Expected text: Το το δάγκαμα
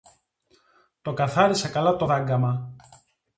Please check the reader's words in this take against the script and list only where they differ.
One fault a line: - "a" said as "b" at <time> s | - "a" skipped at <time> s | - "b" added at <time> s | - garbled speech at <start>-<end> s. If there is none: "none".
- "καθάρισα καλά" added at 1.1 s